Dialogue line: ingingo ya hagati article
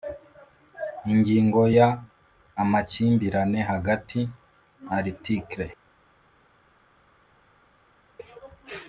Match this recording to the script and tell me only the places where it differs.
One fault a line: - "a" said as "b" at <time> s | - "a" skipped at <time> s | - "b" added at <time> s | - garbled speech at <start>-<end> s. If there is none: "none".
- "amakimbirane" added at 2.6 s